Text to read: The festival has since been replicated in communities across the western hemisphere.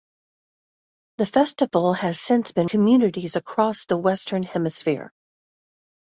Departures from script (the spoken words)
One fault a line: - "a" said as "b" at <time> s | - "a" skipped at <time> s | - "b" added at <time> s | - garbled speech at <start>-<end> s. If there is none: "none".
- "replicated in" skipped at 2.7 s